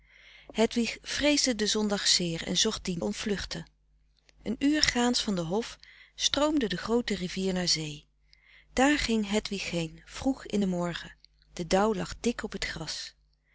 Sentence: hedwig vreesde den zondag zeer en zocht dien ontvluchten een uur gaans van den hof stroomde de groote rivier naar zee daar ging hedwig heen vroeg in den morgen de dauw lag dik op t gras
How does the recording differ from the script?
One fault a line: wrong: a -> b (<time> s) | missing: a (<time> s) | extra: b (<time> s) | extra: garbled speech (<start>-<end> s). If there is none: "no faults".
no faults